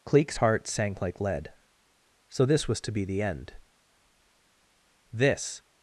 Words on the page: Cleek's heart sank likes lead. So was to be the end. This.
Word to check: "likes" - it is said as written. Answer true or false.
false